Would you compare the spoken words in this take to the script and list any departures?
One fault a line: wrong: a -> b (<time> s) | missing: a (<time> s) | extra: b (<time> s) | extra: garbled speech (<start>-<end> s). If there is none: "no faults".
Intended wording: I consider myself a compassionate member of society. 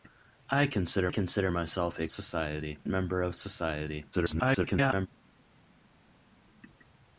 extra: consider (1.1 s)
wrong: compassionate -> society (2.1 s)
extra: garbled speech (4.1-5.1 s)